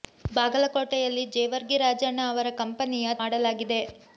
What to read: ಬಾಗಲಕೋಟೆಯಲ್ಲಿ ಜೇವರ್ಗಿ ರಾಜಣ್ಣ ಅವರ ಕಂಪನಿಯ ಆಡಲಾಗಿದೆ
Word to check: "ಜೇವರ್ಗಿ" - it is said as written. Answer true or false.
true